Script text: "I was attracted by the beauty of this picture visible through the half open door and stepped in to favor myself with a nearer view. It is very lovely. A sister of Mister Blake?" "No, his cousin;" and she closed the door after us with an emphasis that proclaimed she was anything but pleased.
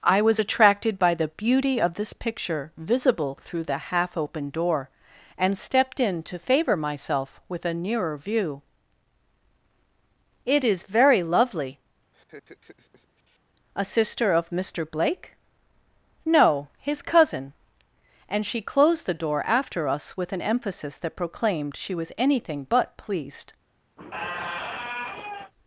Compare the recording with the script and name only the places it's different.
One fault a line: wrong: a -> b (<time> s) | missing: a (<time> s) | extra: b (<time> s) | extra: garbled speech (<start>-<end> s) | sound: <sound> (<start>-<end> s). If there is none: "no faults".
sound: laugh (12.1-13.4 s)
sound: squeak (24.0-25.5 s)